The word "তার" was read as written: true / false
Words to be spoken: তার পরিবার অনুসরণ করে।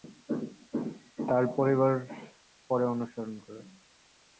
true